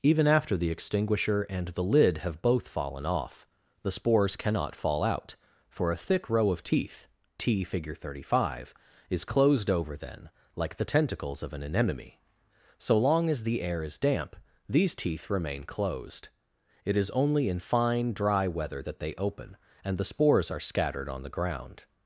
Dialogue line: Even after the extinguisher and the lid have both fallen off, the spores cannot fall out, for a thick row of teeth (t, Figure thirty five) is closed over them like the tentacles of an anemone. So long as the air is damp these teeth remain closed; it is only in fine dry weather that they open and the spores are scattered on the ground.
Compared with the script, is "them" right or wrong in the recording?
wrong